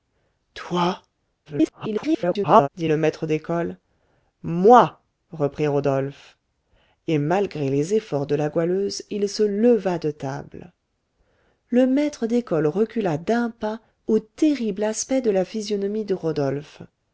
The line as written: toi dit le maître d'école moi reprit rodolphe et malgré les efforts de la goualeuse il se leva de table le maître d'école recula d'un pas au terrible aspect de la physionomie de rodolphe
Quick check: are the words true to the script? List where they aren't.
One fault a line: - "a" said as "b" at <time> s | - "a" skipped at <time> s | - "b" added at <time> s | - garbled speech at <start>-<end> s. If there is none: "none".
- garbled speech at 1.5-2.7 s